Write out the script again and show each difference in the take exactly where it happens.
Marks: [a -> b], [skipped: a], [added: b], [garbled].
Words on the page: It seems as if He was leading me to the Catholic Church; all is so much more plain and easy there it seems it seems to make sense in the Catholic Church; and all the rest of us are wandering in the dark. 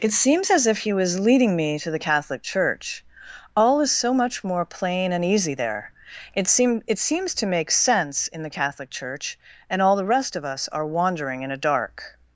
It seems as if He was leading me to the Catholic Church; all is so much more plain and easy there it [seems -> seem] it seems to make sense in the Catholic Church; and all the rest of us are wandering in [the -> a] dark.